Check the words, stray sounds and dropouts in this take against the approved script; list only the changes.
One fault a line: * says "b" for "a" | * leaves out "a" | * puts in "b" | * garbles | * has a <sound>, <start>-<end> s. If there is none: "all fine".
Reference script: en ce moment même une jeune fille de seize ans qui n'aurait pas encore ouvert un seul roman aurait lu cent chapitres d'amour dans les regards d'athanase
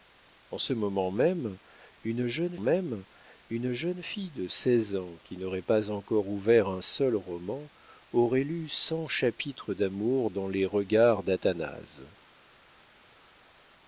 * puts in "même une jeune"